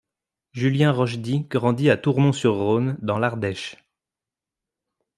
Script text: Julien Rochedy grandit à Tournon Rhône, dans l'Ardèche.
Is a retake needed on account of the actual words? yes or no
yes